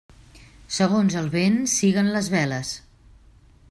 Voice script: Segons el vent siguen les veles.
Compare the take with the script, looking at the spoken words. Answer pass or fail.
pass